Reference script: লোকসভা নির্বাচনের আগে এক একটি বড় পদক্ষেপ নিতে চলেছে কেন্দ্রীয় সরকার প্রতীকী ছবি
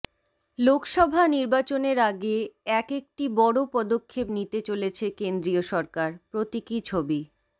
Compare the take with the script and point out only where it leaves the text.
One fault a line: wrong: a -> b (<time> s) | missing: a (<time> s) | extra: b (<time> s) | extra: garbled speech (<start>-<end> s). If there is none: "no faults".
no faults